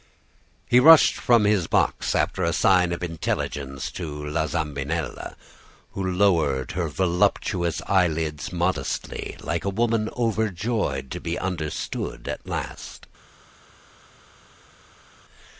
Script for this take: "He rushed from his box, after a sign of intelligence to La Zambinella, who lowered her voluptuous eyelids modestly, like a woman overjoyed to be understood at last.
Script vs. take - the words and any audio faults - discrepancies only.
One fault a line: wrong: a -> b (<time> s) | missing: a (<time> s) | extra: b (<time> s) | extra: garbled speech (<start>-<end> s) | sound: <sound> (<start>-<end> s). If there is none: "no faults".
no faults